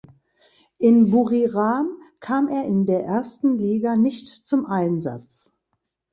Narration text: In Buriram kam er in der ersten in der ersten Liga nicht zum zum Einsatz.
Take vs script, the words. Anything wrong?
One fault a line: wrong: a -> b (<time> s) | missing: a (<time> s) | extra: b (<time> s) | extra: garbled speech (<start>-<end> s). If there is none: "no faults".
missing: in der ersten (3.6 s)
missing: zum (4.6 s)